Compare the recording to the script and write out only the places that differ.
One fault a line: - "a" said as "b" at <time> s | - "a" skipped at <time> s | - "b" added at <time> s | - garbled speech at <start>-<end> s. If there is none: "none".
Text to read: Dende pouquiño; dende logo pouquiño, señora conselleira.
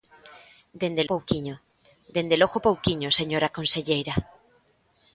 none